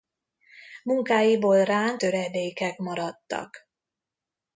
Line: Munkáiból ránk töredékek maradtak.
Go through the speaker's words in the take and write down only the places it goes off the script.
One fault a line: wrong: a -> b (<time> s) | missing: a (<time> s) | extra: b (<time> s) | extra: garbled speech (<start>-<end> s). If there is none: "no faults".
no faults